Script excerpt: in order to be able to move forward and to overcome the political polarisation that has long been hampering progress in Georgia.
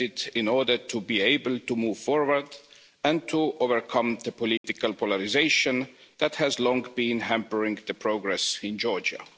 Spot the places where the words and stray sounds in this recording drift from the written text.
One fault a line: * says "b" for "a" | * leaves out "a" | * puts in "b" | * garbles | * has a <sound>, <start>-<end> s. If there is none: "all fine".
* has a dropout, 4.6-4.6 s